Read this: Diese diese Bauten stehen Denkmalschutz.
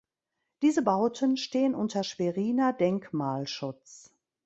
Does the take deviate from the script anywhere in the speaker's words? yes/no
yes